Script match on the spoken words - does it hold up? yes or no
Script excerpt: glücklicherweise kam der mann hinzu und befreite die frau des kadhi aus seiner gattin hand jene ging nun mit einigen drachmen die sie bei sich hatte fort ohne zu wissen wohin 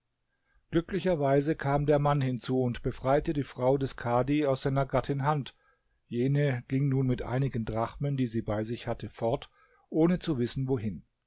yes